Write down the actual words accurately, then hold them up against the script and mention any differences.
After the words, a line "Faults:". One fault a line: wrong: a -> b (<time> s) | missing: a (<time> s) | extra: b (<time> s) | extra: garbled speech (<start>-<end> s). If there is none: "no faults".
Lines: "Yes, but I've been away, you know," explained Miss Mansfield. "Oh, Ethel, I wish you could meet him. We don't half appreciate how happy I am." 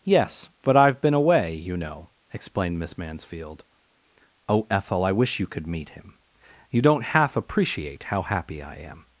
"Yes, but I've been away, you know," explained Miss Mansfield. "Oh, Ethel, I wish you could meet him. You don't half appreciate how happy I am."
Faults:
wrong: We -> You (6.7 s)